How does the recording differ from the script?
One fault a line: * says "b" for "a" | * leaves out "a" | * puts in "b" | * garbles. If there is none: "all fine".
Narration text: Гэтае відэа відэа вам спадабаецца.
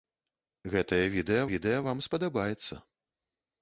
all fine